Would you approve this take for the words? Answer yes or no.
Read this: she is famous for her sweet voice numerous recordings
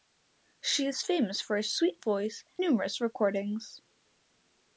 yes